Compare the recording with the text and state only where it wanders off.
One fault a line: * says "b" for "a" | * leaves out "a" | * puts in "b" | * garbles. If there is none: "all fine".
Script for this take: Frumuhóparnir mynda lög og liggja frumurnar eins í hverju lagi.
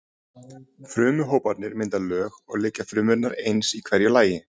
all fine